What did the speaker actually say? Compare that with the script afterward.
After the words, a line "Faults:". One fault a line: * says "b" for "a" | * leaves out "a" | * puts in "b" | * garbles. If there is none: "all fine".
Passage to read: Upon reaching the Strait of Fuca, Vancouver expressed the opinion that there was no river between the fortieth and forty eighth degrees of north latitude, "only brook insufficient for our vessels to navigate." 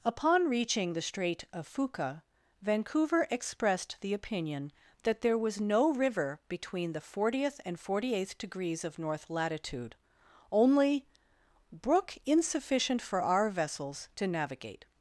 Upon reaching the Strait of Fuca, Vancouver expressed the opinion that there was no river between the fortieth and forty eighth degrees of north latitude, "only brook insufficient for our vessels to navigate."
Faults:
all fine